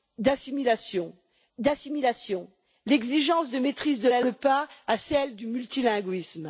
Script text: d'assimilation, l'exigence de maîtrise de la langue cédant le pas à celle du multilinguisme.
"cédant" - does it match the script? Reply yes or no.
no